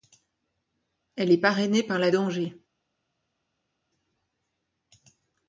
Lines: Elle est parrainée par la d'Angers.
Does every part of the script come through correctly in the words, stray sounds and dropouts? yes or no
yes